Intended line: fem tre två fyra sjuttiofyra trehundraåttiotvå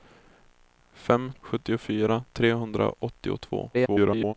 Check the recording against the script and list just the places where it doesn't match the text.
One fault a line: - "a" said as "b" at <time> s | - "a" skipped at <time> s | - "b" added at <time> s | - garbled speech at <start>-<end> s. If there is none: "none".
- "tre två fyra" skipped at 1.3 s
- garbled speech at 3.7-4.3 s